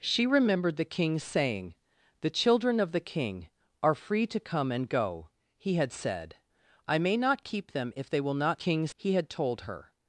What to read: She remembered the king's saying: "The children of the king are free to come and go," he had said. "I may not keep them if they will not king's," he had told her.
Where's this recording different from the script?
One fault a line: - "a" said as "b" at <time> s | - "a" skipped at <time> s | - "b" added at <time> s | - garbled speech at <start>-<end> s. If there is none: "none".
none